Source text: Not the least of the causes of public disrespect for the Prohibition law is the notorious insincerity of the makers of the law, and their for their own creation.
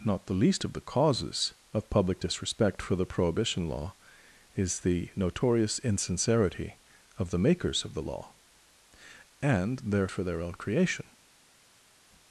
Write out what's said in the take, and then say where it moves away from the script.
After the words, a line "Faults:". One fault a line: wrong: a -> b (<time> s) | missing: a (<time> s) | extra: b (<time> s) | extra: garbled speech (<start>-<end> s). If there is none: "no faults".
Not the least of the causes of public disrespect for the Prohibition law is the notorious insincerity of the makers of the law, and their for their own creation.
Faults:
no faults